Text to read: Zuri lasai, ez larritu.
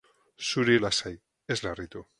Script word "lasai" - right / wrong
right